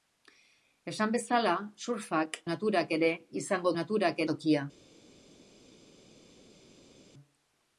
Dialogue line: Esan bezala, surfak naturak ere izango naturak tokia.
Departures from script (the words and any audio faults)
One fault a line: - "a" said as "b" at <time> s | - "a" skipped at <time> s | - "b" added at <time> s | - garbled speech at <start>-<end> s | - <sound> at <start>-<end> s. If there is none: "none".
none